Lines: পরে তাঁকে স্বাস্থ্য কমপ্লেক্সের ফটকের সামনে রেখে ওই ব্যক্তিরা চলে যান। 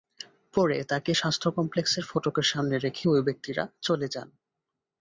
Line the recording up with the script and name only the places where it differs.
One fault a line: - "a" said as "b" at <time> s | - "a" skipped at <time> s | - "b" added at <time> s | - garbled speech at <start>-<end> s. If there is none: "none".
none